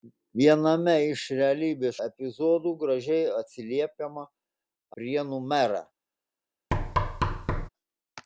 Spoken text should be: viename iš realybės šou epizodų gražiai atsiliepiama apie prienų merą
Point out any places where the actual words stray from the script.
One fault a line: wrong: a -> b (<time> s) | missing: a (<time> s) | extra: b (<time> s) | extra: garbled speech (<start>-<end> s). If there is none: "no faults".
missing: šou (2.0 s)
missing: apie (4.3 s)